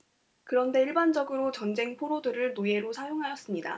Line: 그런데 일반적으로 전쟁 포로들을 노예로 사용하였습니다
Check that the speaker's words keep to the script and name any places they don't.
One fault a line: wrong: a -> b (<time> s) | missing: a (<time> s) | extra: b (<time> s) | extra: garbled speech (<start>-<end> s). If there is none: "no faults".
no faults